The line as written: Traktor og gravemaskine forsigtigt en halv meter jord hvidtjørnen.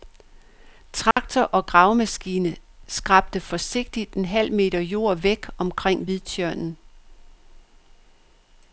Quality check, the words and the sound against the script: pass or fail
fail